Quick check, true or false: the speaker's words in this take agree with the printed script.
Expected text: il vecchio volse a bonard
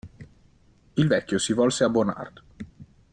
false